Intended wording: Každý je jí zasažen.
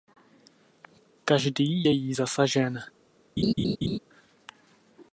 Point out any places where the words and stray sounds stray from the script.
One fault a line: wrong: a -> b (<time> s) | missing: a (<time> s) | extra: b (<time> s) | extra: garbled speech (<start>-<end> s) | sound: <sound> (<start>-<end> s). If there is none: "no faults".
sound: laugh (3.4-4.0 s)